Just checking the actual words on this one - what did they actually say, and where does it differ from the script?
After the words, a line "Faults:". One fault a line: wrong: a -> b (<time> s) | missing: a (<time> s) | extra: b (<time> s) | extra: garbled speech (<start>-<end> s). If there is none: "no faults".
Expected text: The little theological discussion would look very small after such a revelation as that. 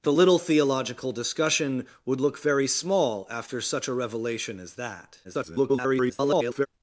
The little theological discussion would look very small after such a revelation as that. [garbled]
Faults:
extra: garbled speech (5.2-6.7 s)